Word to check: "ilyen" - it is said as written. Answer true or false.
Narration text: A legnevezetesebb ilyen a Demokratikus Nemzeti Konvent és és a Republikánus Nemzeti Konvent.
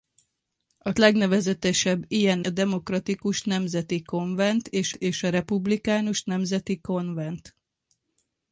true